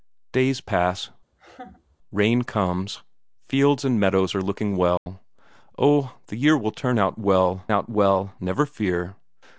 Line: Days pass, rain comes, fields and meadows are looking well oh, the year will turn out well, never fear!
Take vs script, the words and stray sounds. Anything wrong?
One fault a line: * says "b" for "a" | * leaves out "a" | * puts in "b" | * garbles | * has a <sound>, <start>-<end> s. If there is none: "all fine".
* has a laugh, 1.3-2.0 s
* has a dropout, 5.0-5.1 s
* puts in "out well"